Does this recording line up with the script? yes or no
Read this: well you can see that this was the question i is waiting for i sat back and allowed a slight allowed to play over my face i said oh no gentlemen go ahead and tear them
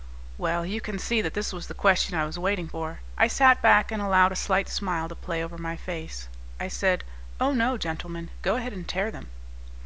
no